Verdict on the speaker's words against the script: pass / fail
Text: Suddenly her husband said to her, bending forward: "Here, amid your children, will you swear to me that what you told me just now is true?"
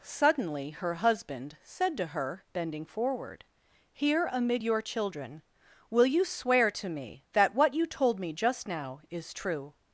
pass